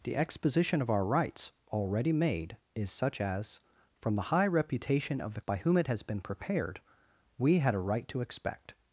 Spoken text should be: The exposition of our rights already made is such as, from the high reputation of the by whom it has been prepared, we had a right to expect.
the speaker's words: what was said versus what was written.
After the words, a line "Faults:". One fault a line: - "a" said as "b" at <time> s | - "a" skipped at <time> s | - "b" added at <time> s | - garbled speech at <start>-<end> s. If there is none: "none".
The exposition of our rights already made is such as, from the high reputation of the by whom it has been prepared, we had a right to expect.
Faults:
none